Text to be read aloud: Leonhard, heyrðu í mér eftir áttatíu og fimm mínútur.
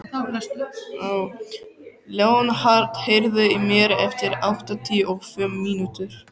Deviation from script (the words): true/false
false